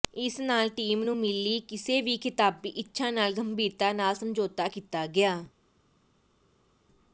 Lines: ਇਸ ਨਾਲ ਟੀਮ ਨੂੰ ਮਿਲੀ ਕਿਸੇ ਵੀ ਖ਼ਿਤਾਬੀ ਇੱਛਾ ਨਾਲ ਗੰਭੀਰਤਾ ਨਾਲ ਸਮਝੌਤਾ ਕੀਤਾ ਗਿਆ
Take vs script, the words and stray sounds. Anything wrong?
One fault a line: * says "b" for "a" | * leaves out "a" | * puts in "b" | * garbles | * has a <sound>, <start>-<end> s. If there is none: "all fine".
all fine